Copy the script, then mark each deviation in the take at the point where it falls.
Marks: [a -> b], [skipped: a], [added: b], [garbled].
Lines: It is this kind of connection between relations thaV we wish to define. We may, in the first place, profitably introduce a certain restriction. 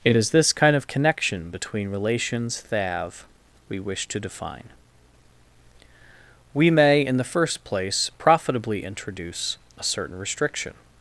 It is this kind of connection between relations thaV we wish to define. We may, in the first place, profitably introduce a certain restriction.